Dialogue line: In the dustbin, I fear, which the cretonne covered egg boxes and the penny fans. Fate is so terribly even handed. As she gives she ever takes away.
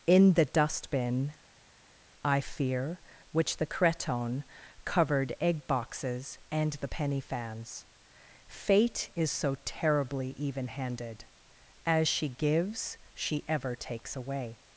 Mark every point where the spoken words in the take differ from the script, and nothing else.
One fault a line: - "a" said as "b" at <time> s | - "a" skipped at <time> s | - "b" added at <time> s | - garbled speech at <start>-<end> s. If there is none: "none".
none